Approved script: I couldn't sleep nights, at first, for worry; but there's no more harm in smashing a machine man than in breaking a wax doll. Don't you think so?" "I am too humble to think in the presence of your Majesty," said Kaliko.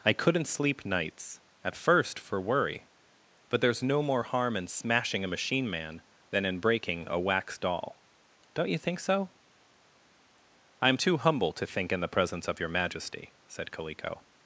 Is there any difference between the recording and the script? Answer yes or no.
no